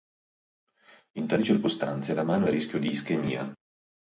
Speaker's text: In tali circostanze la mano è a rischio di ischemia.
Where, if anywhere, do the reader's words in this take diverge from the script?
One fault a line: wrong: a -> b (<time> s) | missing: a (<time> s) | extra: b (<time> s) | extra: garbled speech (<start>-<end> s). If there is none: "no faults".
no faults